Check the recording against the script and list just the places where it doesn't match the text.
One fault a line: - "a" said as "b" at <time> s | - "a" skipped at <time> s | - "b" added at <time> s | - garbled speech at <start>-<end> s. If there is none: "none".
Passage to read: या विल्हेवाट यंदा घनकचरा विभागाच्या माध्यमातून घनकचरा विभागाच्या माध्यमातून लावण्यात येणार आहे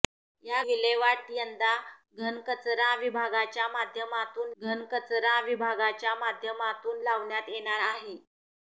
none